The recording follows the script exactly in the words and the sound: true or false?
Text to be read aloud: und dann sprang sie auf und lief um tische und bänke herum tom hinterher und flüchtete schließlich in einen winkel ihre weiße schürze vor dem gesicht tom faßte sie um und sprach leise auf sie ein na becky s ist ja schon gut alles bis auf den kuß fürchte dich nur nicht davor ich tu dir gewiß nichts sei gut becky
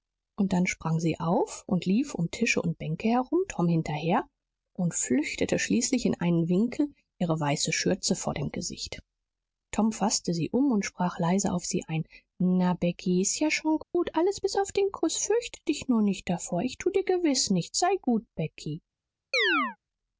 false